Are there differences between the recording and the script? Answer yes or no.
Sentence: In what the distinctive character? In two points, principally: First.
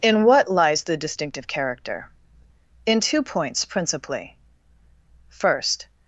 yes